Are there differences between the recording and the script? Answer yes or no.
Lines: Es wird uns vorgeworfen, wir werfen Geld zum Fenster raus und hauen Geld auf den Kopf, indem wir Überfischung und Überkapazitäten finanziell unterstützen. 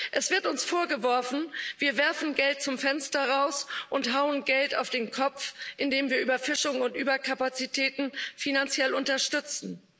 no